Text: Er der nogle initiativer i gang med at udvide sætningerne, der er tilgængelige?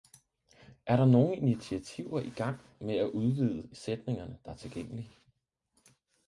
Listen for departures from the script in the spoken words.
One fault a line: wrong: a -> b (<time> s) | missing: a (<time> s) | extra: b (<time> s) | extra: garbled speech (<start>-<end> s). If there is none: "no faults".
no faults